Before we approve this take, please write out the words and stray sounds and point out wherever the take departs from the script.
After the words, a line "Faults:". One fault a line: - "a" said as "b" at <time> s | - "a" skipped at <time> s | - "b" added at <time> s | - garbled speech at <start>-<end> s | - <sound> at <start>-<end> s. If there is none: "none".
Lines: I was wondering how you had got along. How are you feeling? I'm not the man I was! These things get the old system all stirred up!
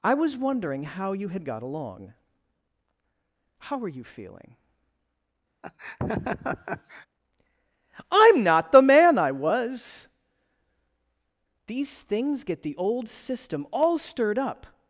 I was wondering how you had got along. How are you feeling? I'm not the man I was! These things get the old system all stirred up!
Faults:
- laugh at 5.6-7.1 s